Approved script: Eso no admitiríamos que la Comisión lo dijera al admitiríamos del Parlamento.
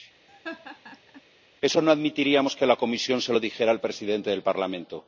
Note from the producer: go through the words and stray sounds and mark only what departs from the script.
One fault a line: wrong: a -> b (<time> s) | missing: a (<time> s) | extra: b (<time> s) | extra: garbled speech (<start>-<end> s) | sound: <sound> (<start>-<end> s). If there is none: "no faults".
sound: laugh (0.3-1.2 s)
extra: se (3.2 s)
wrong: admitiríamos -> presidente (3.8 s)